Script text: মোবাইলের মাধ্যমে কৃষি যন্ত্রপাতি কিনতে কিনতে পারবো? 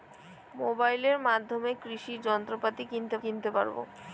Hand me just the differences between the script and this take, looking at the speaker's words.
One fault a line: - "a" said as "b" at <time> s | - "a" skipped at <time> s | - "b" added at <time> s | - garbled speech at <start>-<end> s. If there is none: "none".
none